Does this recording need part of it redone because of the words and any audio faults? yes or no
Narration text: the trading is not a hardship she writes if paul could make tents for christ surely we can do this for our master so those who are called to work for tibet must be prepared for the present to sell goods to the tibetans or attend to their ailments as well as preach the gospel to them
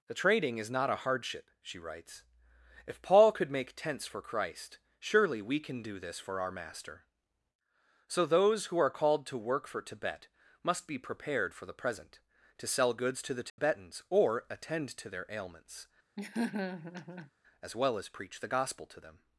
yes